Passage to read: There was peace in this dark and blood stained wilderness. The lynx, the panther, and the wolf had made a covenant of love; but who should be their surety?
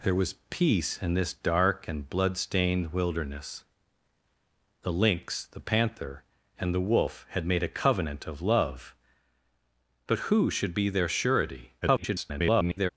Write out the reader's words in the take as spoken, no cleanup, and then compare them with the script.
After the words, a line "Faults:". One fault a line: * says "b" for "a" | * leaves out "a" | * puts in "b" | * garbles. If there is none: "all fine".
There was peace in this dark and blood stained wilderness. The lynx, the panther, and the wolf had made a covenant of love; but who should be their surety? [garbled]
Faults:
* garbles